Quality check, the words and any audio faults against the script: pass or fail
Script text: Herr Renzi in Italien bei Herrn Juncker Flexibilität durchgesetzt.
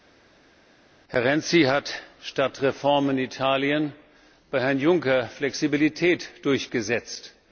fail